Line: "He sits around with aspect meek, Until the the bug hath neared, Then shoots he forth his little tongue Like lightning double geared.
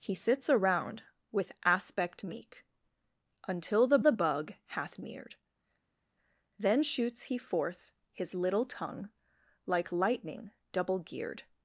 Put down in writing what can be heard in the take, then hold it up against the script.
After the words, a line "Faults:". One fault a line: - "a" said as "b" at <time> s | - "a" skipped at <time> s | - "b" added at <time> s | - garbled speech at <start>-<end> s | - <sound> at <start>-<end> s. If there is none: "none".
"He sits around with aspect meek, Until the the bug hath neared, Then shoots he forth his little tongue Like lightning double geared.
Faults:
none